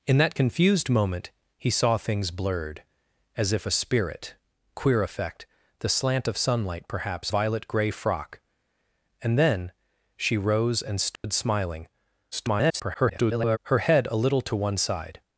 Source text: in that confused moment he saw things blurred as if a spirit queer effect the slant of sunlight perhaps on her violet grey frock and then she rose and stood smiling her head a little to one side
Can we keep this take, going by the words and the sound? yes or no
no